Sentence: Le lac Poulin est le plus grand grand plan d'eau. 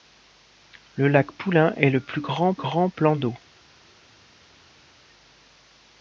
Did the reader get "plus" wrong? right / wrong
right